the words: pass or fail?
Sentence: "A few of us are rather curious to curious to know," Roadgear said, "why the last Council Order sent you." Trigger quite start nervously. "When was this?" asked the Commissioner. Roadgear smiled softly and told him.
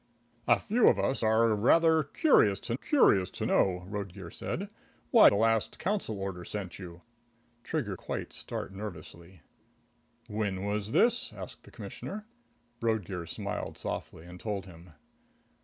pass